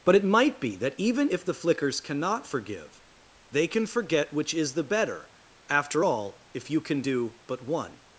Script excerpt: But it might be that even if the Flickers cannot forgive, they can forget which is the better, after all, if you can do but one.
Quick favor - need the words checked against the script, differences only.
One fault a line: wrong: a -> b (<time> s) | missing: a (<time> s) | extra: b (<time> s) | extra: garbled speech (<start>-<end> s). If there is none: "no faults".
no faults